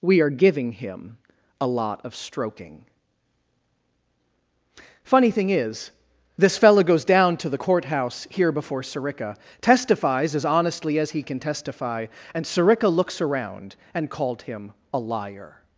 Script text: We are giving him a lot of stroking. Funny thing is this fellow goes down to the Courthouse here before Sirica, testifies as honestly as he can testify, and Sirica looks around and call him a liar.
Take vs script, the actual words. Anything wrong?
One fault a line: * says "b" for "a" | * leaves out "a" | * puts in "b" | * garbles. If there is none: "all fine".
* says "called" for "call"